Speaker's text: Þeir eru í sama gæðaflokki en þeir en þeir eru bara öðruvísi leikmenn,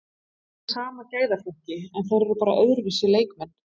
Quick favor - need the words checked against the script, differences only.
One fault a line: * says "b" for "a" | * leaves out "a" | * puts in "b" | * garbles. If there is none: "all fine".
* leaves out "en þeir"